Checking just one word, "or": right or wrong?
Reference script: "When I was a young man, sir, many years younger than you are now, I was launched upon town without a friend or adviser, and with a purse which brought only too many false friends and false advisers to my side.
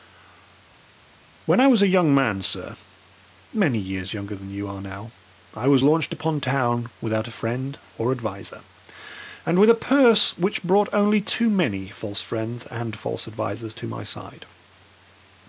right